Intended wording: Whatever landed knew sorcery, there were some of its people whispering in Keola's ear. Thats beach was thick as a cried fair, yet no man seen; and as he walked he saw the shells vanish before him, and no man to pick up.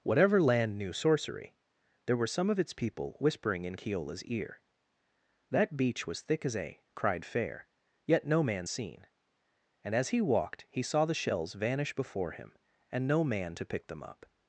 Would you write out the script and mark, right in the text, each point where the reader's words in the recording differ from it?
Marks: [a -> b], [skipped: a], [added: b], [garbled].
Whatever [landed -> land] knew sorcery, there were some of its people whispering in Keola's ear. [Thats -> That] beach was thick as a cried fair, yet no man seen; and as he walked he saw the shells vanish before him, and no man to pick [added: them] up.